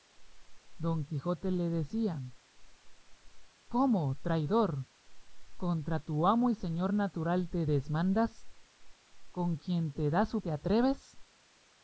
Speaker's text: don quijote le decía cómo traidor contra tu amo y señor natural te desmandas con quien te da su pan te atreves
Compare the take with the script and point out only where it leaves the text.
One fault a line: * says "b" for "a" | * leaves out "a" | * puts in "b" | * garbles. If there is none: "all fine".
* leaves out "pan"